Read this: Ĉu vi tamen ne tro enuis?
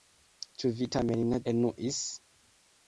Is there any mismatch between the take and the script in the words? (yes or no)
yes